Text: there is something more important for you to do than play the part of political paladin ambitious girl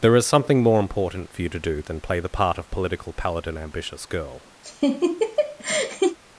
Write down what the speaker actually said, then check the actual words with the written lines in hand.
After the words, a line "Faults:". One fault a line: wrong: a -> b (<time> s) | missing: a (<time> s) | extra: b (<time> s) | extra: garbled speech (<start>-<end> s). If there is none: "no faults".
there is something more important for you to do than play the part of political paladin ambitious girl
Faults:
no faults